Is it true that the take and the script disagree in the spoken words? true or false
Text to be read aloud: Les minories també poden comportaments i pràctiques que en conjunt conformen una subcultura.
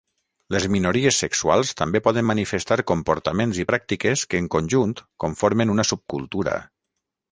true